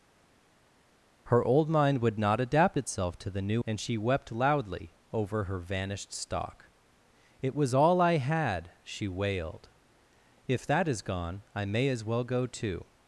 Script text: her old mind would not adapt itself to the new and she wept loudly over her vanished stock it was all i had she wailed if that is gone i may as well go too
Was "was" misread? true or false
false